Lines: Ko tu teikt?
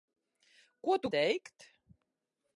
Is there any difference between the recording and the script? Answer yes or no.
no